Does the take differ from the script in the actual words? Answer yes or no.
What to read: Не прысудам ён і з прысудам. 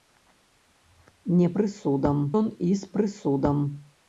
no